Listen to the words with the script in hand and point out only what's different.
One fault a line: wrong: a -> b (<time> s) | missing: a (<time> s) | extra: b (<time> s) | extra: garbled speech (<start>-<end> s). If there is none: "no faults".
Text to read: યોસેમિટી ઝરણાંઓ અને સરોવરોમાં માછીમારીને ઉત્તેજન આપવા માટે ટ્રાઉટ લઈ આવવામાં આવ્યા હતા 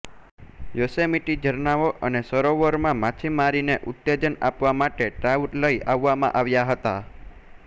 no faults